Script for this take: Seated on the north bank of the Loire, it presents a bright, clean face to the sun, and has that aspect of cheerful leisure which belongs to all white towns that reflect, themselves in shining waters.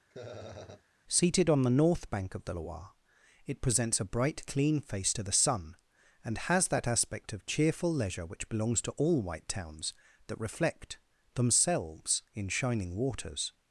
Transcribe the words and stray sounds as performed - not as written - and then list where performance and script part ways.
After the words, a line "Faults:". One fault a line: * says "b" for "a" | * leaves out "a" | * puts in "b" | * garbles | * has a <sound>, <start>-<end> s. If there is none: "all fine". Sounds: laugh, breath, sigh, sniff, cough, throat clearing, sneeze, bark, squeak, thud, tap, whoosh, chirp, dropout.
Seated on the north bank of the Loire, it presents a bright, clean face to the sun, and has that aspect of cheerful leisure which belongs to all white towns that reflect, themselves in shining waters.
Faults:
* has a laugh, 0.1-0.8 s